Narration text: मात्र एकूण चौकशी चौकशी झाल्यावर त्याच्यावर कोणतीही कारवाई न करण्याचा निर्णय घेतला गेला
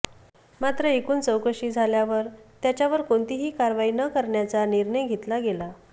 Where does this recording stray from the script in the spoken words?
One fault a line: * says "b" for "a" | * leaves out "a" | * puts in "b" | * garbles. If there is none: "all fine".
* leaves out "चौकशी"